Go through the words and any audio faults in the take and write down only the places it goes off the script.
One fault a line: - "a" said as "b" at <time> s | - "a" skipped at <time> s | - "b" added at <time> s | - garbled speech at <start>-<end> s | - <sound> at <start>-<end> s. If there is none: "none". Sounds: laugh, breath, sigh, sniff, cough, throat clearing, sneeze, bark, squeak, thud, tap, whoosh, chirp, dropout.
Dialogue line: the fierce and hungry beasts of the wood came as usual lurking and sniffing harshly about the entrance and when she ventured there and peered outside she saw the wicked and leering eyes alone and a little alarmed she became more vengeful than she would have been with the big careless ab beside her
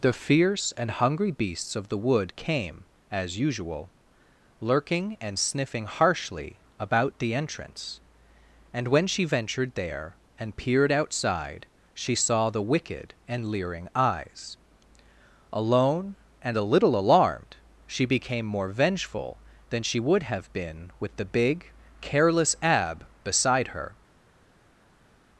none